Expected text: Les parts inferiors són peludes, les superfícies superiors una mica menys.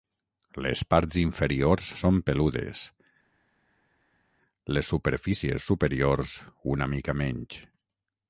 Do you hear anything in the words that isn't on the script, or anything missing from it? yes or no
no